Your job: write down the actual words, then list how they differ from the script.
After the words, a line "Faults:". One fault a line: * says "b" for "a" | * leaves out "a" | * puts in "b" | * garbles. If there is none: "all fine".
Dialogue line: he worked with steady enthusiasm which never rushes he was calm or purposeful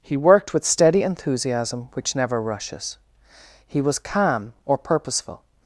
he worked with steady enthusiasm which never rushes he was calm or purposeful
Faults:
all fine